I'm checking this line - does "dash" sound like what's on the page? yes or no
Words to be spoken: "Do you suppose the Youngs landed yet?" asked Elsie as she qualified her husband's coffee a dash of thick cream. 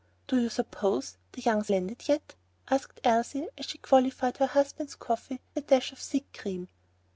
yes